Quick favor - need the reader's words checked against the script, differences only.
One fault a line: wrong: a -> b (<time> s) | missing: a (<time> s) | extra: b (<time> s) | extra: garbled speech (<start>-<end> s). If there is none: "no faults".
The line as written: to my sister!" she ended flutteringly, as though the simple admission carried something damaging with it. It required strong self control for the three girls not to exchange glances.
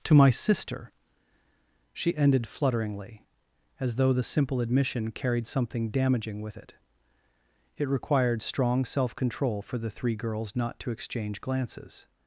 no faults